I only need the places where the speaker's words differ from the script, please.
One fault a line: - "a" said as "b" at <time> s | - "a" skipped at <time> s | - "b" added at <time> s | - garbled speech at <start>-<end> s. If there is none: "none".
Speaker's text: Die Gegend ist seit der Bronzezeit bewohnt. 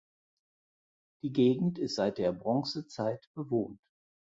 none